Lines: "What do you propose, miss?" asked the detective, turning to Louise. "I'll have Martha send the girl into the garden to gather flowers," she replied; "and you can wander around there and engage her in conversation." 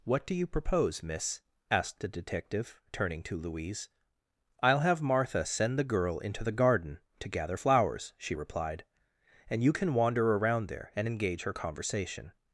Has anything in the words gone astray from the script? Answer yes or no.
yes